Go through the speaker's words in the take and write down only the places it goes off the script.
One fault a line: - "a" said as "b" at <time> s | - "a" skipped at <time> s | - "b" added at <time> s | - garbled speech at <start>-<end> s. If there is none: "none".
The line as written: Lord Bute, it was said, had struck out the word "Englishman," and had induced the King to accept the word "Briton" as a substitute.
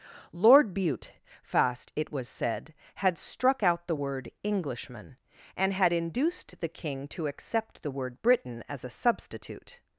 - "fast" added at 1.4 s